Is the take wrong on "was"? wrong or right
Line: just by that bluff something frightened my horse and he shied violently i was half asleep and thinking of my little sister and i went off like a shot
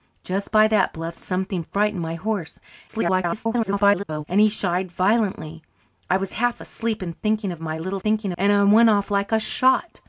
right